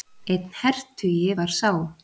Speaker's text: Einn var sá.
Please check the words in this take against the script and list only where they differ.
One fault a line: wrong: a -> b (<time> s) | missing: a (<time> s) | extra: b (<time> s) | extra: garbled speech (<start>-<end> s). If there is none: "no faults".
extra: hertugi (0.6 s)